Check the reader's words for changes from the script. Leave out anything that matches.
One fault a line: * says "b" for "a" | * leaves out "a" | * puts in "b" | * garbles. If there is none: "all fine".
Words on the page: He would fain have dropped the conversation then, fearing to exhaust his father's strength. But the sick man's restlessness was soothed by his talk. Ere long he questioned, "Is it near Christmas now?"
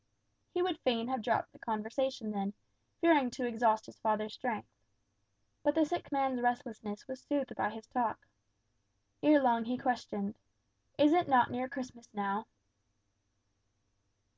* puts in "not"